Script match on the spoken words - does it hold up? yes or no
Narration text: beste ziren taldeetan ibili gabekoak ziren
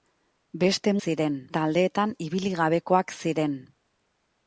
yes